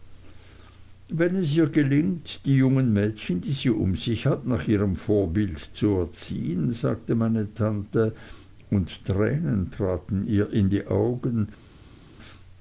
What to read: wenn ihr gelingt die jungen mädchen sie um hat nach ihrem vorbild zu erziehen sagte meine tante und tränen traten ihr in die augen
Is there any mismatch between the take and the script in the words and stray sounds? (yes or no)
yes